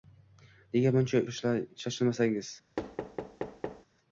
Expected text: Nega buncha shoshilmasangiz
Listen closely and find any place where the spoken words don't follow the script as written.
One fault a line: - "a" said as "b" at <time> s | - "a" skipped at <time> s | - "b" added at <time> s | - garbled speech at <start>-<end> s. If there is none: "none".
none